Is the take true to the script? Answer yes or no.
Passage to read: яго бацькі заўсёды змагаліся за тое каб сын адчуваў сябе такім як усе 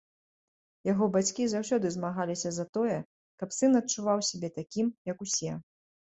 yes